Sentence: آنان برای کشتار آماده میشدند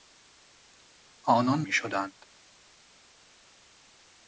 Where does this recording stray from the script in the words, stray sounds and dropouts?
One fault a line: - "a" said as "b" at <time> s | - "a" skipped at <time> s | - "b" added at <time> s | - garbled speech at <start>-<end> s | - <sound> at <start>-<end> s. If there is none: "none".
- "برای کشتار آماده" skipped at 1.6 s